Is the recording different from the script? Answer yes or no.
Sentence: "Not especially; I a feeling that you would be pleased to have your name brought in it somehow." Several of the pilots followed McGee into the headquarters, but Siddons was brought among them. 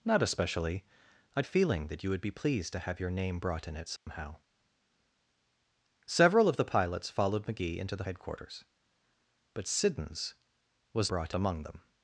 no